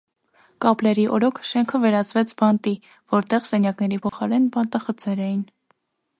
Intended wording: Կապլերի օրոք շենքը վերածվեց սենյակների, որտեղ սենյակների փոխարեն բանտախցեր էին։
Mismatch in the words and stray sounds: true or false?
true